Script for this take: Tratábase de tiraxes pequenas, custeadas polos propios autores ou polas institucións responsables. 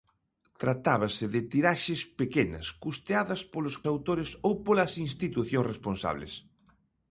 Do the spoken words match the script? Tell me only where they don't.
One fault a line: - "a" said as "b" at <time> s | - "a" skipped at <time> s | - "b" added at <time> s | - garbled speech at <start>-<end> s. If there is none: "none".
- "propios" skipped at 3.8 s